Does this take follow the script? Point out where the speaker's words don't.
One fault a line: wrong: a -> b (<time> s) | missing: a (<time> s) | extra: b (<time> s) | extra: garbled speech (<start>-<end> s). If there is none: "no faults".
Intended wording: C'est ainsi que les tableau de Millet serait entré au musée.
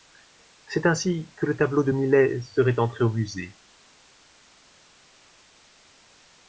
wrong: les -> le (1.4 s)